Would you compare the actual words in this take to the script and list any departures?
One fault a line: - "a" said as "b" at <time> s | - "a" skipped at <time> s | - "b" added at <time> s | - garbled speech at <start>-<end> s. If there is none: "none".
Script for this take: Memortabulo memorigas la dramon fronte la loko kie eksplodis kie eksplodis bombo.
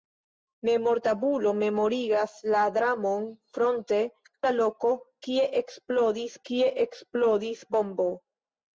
none